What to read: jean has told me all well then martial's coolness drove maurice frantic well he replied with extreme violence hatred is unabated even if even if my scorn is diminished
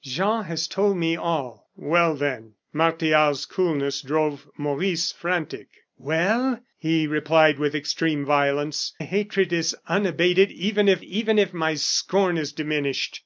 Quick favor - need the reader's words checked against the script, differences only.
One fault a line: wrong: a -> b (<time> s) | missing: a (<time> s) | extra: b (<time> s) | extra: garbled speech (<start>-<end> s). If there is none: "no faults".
no faults